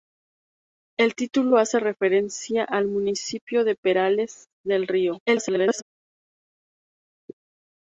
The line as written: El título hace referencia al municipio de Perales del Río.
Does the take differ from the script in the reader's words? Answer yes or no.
yes